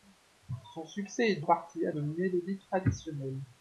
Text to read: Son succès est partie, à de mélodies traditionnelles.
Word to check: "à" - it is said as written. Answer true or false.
true